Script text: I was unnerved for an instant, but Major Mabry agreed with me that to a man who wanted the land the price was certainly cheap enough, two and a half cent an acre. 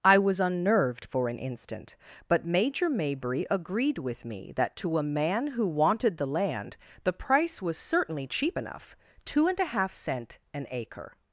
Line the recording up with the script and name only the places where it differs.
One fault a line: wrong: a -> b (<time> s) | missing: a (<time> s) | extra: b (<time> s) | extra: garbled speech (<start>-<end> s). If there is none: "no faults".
no faults